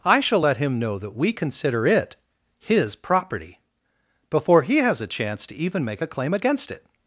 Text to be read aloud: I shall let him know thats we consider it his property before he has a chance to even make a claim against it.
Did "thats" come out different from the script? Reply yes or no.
yes